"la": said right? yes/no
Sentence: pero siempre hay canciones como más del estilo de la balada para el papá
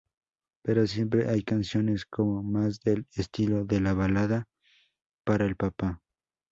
yes